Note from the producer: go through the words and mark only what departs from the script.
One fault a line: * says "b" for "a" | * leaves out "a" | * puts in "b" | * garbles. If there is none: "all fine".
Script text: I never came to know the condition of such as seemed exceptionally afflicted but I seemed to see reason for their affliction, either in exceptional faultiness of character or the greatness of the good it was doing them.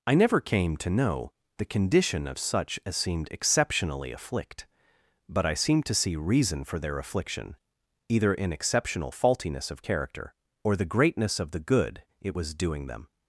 * says "afflict" for "afflicted"